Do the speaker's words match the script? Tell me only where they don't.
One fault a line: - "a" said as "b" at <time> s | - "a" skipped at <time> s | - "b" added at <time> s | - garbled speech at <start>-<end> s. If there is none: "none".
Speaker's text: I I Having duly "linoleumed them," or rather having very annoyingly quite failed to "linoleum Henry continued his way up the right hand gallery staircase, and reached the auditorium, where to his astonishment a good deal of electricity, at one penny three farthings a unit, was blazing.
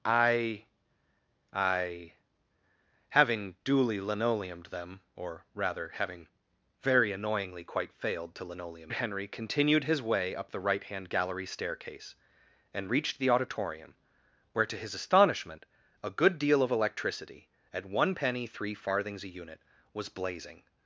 none